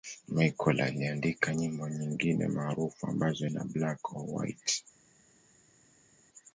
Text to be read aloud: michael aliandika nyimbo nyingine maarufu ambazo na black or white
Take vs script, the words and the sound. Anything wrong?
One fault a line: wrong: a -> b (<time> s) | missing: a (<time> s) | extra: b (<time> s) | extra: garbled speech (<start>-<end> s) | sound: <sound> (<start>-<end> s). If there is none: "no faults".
no faults